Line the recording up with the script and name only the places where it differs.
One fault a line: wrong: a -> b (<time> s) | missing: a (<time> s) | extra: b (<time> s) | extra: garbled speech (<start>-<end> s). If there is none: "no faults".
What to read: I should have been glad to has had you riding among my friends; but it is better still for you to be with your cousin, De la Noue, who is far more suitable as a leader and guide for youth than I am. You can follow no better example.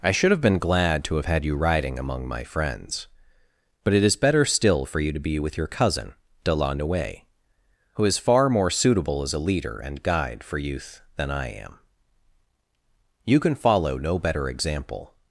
wrong: has -> have (1.1 s)